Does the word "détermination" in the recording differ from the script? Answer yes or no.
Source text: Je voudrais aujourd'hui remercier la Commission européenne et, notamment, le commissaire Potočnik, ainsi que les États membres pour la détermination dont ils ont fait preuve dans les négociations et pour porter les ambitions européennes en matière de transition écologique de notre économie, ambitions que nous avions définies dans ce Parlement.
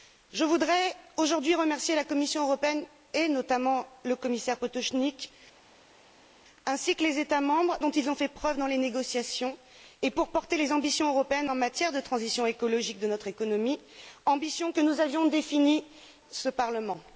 yes